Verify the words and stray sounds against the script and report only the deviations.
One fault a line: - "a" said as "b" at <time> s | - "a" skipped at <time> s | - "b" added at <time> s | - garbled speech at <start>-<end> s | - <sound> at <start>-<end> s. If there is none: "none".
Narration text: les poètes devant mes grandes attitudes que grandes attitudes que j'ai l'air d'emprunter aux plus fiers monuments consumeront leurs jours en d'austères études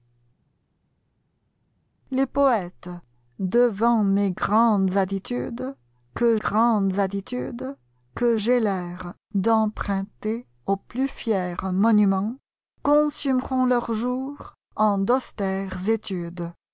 none